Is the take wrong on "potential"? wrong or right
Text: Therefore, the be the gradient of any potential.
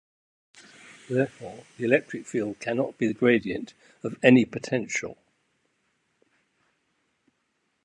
right